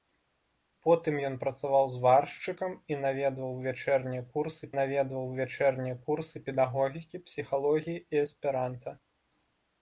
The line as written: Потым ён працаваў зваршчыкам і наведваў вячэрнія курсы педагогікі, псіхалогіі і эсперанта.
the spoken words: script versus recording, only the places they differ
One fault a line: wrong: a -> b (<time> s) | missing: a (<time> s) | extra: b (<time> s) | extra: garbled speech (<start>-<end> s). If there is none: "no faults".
extra: наведваў вячэрнія курсы (4.8 s)